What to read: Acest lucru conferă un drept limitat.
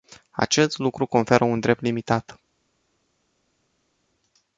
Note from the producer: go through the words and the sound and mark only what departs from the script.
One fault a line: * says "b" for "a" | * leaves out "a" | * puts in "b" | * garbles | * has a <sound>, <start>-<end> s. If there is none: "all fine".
all fine